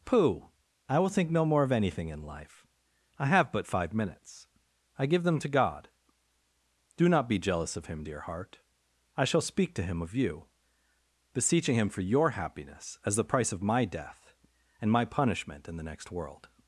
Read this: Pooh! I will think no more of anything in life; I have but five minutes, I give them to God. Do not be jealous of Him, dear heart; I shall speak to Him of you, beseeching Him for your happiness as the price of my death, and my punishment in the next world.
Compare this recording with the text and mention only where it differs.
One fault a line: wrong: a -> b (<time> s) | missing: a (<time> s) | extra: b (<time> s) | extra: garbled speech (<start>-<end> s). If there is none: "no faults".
no faults